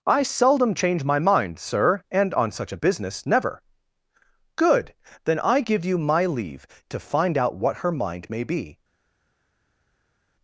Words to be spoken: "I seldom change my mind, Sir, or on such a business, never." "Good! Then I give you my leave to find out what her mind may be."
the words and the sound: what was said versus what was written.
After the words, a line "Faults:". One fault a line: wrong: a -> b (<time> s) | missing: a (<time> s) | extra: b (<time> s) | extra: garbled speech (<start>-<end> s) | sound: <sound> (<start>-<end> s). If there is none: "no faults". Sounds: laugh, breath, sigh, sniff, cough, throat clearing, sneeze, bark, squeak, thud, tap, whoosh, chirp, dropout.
"I seldom change my mind, Sir, and on such a business, never." "Good! Then I give you my leave to find out what her mind may be."
Faults:
wrong: or -> and (2.1 s)